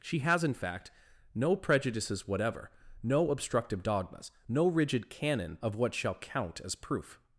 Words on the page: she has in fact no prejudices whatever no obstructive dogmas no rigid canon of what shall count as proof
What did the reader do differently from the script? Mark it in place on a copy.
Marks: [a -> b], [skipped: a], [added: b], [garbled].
she has in fact no prejudices whatever no obstructive dogmas no rigid canon of what shall count as proof